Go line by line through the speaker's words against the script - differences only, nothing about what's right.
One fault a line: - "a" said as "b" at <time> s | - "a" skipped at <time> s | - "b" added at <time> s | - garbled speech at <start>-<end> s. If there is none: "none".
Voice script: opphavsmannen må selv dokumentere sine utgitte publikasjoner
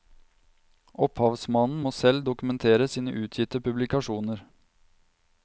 none